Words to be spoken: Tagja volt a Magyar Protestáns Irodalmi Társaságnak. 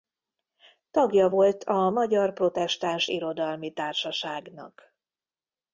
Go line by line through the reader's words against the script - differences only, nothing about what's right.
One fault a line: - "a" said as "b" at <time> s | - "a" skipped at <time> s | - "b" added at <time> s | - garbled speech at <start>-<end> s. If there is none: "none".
none